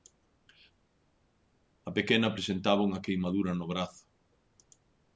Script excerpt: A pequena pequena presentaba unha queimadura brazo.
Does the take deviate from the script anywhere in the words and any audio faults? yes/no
yes